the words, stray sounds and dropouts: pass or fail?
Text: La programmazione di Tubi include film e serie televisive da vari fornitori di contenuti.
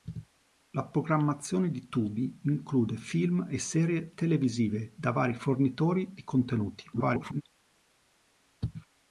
fail